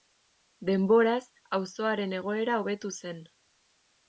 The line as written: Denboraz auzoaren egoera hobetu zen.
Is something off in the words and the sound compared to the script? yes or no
no